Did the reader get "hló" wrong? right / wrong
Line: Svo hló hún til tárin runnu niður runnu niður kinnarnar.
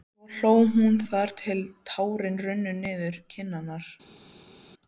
right